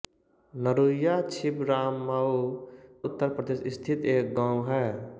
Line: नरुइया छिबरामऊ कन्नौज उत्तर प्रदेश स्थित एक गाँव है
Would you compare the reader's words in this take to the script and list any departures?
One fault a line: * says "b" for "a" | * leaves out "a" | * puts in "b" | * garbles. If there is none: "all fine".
* leaves out "कन्नौज"